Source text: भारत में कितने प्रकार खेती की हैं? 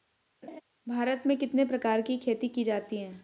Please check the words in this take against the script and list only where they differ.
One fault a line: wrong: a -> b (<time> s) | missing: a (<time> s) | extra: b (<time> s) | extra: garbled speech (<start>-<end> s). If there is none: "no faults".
extra: की (2.0 s)
extra: जाती (2.6 s)